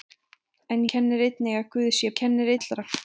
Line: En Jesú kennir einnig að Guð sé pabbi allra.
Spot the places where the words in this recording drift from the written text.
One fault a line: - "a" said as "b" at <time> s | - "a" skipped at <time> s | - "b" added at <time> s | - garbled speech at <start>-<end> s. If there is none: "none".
- "Jesú" skipped at 0.8 s
- "pabbi" said as "kennir" at 2.2 s